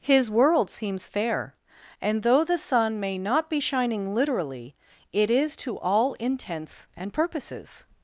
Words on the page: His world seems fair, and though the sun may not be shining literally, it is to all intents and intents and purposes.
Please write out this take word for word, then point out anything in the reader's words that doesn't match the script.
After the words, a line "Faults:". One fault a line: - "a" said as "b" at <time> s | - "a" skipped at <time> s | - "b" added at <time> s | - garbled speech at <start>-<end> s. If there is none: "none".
His world seems fair, and though the sun may not be shining literally, it is to all intents and purposes.
Faults:
- "intents and" skipped at 7.1 s